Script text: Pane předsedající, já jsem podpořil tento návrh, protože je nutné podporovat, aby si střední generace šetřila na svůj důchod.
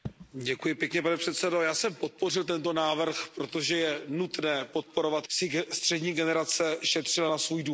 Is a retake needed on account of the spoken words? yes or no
yes